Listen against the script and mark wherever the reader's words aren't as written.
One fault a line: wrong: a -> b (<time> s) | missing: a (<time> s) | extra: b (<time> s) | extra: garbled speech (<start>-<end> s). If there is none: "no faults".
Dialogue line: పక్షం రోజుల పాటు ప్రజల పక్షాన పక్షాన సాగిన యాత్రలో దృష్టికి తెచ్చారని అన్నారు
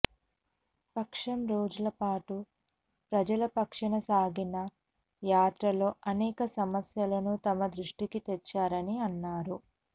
missing: పక్షాన (4.0 s)
extra: అనేక సమస్యలను తమ (6.1 s)